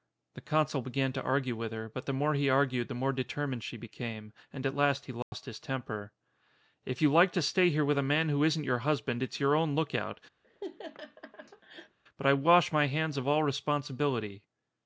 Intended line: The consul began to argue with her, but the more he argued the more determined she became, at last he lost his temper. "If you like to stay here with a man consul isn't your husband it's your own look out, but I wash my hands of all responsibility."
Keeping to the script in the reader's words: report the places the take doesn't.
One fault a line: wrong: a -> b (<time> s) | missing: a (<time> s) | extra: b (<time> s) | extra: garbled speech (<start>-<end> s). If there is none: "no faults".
extra: and (4.5 s)
wrong: consul -> who (8.3 s)